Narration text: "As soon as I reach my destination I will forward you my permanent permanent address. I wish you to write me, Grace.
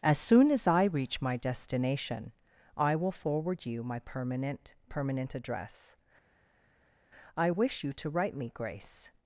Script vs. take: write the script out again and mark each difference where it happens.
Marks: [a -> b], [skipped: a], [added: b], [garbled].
"As soon as I reach my destination I will forward you my permanent permanent address. I wish you to write me, Grace.